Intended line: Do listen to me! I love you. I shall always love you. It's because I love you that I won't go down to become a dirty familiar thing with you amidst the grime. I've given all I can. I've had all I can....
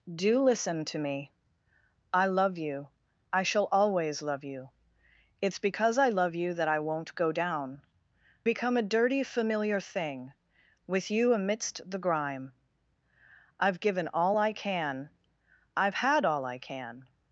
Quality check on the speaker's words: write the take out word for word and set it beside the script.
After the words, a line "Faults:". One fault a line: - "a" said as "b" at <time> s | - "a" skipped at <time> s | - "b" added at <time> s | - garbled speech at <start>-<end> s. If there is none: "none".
Do listen to me! I love you. I shall always love you. It's because I love you that I won't go down become a dirty familiar thing with you amidst the grime. I've given all I can. I've had all I can....
Faults:
- "to" skipped at 7.8 s